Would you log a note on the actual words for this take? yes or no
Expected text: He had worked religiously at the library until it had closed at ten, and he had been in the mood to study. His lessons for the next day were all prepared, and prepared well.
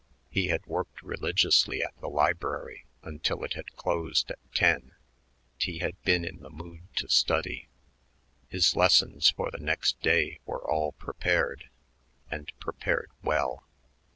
yes